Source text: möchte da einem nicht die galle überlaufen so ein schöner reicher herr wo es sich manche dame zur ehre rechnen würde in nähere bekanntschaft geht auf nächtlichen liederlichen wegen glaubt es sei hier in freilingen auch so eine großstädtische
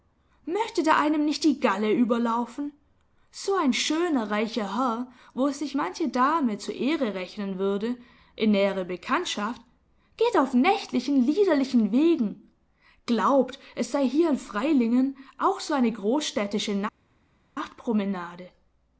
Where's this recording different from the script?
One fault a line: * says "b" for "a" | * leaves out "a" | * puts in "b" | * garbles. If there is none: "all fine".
all fine